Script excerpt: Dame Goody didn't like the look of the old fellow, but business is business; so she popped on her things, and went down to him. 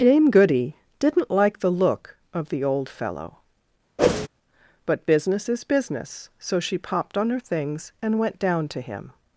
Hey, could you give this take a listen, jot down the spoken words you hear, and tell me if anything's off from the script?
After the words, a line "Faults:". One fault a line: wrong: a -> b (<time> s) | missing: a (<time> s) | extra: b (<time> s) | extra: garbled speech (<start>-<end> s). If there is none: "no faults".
Dame Goody didn't like the look of the old fellow, but business is business; so she popped on her things, and went down to him.
Faults:
no faults